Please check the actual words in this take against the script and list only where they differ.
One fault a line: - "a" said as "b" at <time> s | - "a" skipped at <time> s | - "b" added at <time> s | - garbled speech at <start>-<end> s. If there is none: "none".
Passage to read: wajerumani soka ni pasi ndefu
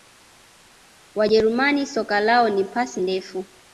- "lao" added at 2.2 s